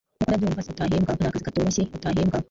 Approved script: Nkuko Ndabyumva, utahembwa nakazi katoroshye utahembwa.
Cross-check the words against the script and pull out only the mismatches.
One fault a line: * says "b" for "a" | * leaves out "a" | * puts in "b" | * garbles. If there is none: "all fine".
all fine